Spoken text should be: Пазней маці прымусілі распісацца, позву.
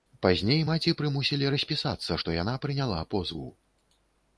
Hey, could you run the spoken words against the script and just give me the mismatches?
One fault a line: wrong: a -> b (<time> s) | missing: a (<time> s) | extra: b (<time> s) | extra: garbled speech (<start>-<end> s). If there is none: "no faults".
extra: што яна прыняла (2.2 s)